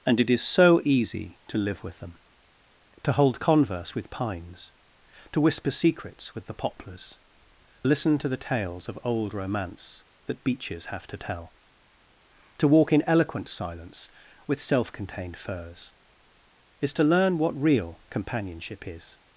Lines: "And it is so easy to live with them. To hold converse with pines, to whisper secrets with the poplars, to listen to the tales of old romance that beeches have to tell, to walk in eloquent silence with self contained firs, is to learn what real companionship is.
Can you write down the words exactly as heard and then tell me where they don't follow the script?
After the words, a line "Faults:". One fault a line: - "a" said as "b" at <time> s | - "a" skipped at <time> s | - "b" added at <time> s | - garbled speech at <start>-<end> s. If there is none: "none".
"And it is so easy to live with them. To hold converse with pines, to whisper secrets with the poplars, listen to the tales of old romance that beeches have to tell, to walk in eloquent silence with self contained firs, is to learn what real companionship is.
Faults:
- "to" skipped at 7.2 s